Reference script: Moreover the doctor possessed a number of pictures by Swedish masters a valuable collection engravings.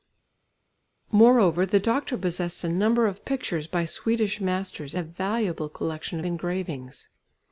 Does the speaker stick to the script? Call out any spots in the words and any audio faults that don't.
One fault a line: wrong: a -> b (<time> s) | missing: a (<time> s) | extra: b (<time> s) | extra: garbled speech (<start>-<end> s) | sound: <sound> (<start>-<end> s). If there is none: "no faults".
no faults